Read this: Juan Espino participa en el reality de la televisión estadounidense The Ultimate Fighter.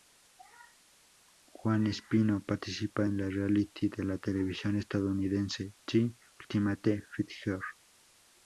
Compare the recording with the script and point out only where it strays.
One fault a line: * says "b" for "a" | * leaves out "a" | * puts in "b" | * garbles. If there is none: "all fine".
all fine